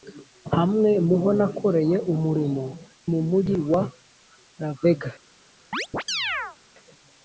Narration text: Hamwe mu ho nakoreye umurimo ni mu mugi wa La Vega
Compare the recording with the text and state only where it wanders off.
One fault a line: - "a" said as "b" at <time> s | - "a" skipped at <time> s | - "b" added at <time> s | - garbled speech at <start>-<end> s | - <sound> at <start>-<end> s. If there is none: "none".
- "ni" skipped at 2.6 s
- chirp at 5.7-6.6 s